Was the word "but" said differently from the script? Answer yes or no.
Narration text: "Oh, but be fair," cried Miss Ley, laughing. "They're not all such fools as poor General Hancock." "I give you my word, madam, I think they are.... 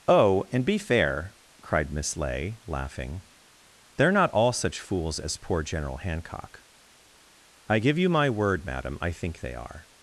yes